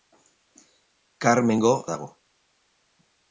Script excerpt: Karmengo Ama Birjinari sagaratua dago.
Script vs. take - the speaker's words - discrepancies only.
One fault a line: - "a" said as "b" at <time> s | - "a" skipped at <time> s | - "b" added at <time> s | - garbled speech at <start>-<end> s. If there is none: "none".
- "Ama Birjinari sagaratua" skipped at 1.7 s